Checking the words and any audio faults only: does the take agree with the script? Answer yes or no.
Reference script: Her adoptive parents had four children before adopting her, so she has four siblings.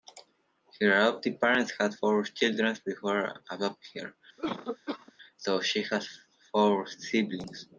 no